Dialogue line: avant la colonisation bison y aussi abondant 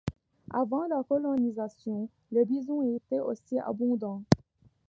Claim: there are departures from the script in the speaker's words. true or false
true